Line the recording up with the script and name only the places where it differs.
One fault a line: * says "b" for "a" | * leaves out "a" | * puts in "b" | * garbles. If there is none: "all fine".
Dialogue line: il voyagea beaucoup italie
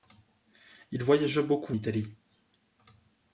all fine